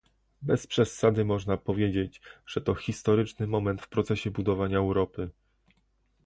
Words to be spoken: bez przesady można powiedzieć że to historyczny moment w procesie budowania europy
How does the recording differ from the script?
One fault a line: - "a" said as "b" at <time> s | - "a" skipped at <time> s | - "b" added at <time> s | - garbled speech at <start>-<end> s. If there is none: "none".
none